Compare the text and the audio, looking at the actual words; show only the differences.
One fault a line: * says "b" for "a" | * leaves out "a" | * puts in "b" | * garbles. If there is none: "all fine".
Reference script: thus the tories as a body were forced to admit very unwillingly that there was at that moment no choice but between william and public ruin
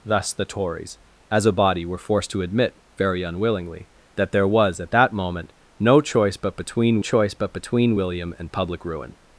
* puts in "choice but between"